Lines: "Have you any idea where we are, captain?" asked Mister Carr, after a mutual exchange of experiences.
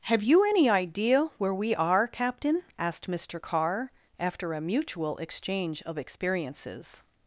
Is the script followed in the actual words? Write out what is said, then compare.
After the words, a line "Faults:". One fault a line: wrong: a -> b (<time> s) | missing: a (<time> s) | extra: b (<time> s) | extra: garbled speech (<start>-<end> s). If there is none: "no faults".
"Have you any idea where we are, captain?" asked Mister Carr, after a mutual exchange of experiences.
Faults:
no faults